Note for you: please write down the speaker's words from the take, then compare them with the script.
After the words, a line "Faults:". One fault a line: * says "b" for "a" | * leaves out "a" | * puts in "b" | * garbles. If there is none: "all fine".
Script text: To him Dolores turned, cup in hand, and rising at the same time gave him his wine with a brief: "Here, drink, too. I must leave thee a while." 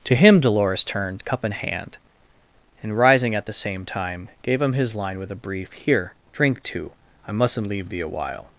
To him Dolores turned, cup in hand, and rising at the same time gave him his line with a brief: "Here, drink, too. I mustn't leave thee a while."
Faults:
* says "line" for "wine"
* says "mustn't" for "must"